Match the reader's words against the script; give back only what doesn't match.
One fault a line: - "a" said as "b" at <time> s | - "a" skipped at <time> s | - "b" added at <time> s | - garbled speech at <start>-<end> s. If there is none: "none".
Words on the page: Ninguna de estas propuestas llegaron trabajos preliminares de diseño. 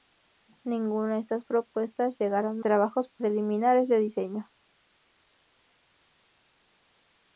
none